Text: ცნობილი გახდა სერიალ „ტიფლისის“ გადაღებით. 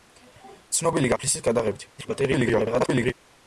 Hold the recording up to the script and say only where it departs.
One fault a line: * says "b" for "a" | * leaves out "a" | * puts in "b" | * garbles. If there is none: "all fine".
* leaves out "გახდა სერიალ"
* garbles